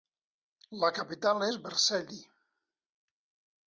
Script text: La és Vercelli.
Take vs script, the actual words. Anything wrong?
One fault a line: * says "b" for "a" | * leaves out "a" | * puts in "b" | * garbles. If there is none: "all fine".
* puts in "capital"